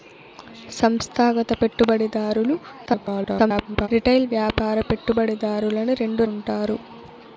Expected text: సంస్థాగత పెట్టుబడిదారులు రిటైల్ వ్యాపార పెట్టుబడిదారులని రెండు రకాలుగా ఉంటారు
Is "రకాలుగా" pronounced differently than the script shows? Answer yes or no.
yes